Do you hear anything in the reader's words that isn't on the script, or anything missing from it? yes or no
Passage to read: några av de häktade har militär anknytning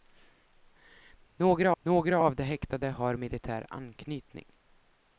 yes